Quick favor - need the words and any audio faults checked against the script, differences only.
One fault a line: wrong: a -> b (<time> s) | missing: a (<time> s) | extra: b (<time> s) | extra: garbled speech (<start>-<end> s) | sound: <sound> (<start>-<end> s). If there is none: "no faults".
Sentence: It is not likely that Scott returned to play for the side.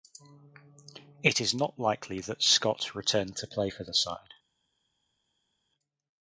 no faults